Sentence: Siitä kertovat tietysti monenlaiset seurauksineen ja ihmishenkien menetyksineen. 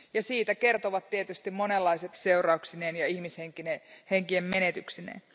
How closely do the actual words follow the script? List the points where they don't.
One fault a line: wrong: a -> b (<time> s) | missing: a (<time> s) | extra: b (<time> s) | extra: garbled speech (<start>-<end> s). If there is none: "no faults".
no faults